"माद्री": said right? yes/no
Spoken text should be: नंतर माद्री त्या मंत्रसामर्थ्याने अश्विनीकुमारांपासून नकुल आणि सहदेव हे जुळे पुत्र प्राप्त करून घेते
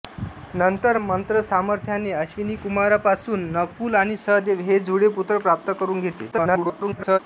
no